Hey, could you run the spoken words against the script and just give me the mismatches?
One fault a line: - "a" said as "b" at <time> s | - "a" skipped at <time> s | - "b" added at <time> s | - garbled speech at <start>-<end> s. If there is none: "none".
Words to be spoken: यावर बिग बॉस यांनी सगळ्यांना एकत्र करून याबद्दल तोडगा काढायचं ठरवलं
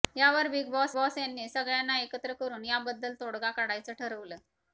- "बॉस" added at 0.9 s